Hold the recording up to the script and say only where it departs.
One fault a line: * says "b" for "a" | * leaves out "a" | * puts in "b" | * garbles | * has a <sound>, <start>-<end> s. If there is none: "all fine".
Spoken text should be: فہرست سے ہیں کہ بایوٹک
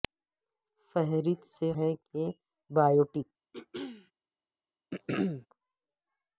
* has a throat clearing, 3.5-4.1 s
* has a throat clearing, 4.9-5.5 s